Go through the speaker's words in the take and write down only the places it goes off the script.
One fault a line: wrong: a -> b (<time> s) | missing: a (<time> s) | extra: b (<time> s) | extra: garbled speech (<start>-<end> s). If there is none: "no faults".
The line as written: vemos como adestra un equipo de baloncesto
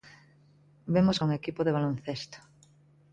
missing: como adestra (1.2 s)